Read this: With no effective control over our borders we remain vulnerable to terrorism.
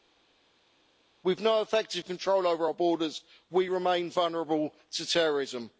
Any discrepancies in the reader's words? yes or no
no